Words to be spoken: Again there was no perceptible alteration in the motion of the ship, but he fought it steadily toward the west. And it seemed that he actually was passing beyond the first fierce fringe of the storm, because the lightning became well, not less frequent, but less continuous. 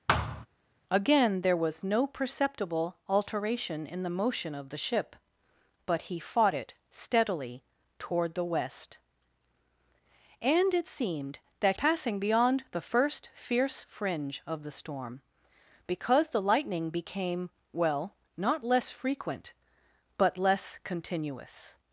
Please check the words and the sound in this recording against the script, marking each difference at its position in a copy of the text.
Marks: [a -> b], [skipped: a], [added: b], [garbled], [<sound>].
[thud] Again there was no perceptible alteration in the motion of the ship, but he fought it steadily toward the west. And it seemed that [skipped: he actually was] passing beyond the first fierce fringe of the storm, because the lightning became well, not less frequent, but less continuous.